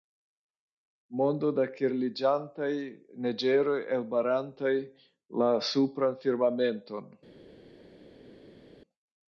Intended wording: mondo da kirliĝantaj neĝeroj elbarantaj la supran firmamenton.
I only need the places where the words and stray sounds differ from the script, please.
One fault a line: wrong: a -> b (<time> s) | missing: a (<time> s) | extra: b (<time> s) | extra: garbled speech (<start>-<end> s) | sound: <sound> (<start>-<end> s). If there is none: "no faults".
no faults